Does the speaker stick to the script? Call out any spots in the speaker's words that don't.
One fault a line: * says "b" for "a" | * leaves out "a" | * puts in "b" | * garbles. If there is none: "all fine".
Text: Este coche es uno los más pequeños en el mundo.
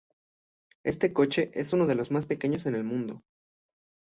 * puts in "de"